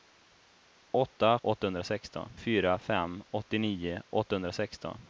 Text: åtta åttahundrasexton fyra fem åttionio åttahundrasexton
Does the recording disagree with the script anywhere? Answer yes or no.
no